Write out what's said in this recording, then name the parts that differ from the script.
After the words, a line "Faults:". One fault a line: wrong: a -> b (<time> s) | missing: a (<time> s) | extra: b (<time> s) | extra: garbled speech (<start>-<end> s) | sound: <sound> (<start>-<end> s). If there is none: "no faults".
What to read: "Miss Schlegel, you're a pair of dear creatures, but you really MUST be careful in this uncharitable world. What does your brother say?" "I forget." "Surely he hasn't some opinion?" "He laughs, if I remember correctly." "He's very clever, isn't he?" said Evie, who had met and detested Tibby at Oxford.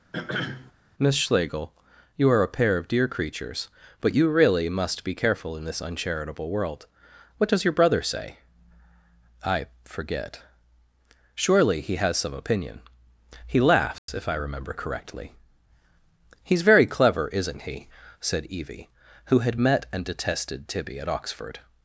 "Miss Schlegel, you're a pair of dear creatures, but you really MUST be careful in this uncharitable world. What does your brother say?" "I forget." "Surely he has some opinion?" "He laughs, if I remember correctly." "He's very clever, isn't he?" said Evie, who had met and detested Tibby at Oxford.
Faults:
sound: throat clearing (0.1-0.7 s)
wrong: hasn't -> has (12.0 s)
sound: dropout (14.0-14.1 s)